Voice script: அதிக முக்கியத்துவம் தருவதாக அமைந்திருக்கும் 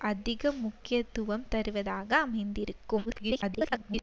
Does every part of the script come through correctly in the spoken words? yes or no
no